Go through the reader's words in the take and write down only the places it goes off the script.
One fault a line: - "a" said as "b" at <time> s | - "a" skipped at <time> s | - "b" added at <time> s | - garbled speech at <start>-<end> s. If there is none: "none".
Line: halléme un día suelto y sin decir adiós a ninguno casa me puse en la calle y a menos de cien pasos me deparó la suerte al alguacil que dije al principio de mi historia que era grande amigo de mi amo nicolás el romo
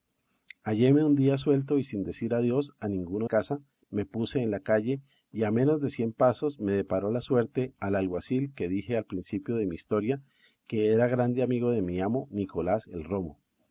none